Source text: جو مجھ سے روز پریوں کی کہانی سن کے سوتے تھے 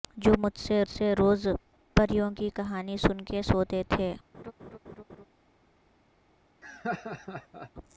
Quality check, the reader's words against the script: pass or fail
fail